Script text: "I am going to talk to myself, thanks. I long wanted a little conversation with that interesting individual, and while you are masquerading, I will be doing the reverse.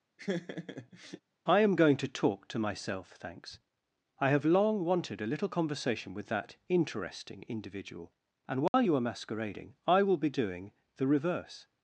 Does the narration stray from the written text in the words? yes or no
yes